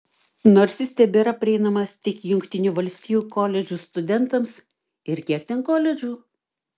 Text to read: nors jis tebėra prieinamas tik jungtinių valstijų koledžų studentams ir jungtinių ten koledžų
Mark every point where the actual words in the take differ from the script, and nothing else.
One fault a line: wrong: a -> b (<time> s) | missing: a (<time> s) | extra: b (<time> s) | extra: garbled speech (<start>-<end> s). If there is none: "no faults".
wrong: jungtinių -> kiek (5.3 s)